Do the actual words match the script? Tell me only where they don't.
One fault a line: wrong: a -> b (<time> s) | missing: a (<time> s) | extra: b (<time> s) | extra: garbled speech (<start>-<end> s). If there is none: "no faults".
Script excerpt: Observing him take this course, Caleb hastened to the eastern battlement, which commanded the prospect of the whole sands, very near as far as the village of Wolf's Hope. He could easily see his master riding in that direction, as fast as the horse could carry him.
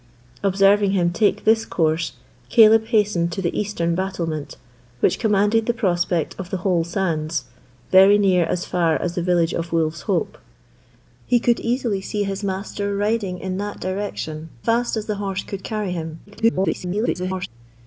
missing: as (14.5 s)
extra: garbled speech (16.3-17.5 s)